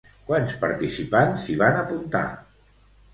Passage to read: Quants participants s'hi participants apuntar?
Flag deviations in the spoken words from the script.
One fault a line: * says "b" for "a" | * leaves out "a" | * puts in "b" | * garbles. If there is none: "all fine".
* says "van" for "participants"